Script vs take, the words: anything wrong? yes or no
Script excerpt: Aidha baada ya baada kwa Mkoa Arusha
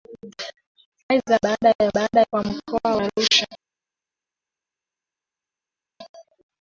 no